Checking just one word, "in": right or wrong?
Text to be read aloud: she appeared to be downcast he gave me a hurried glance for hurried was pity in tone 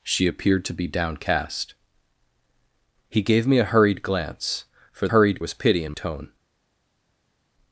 right